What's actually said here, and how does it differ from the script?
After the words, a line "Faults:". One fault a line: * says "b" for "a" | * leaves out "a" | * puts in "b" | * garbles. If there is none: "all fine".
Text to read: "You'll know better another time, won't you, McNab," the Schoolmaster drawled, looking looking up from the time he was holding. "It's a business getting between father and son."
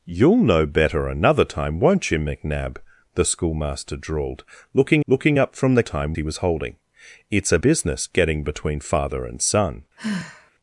"You'll know better another time, won't you, McNab," the Schoolmaster drawled, looking looking up from the time he was holding. "It's a business getting between father and son."
Faults:
all fine